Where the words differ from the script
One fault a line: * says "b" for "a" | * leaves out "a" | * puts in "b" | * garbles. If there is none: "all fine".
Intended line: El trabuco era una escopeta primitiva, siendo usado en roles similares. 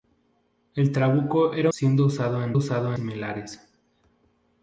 * leaves out "una escopeta primitiva"
* says "usado" for "roles"